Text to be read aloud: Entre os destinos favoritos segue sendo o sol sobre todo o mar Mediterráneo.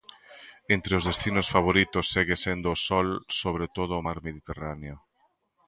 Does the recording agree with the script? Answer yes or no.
yes